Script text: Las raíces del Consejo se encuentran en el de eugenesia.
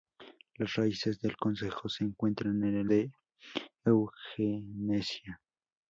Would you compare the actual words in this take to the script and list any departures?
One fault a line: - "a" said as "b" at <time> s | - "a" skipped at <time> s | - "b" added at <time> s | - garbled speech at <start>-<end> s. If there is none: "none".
none